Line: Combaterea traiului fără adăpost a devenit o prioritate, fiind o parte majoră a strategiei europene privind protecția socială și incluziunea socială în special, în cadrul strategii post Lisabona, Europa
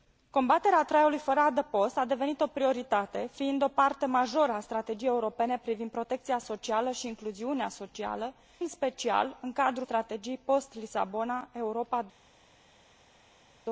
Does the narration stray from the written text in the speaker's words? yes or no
no